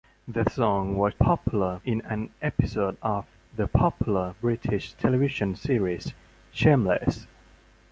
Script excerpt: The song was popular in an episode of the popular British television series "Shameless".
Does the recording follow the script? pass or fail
pass